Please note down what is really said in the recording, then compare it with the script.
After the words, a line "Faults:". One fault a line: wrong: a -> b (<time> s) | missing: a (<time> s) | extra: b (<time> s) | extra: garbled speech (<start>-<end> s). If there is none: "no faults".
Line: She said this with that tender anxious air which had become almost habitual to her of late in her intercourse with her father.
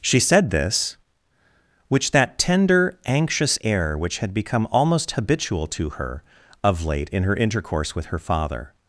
She said this which that tender anxious air which had become almost habitual to her of late in her intercourse with her father.
Faults:
wrong: with -> which (1.9 s)